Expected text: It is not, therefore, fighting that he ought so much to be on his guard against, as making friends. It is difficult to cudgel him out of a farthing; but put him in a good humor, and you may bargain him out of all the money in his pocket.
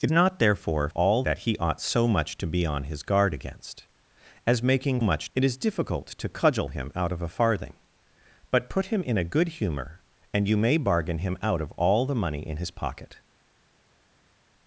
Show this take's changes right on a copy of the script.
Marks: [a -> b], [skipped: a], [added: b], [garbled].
It [skipped: is] not, therefore, [fighting -> all] that he ought so much to be on his guard against, as making [friends. -> much] It is difficult to cudgel him out of a farthing; but put him in a good humor, and you may bargain him out of all the money in his pocket.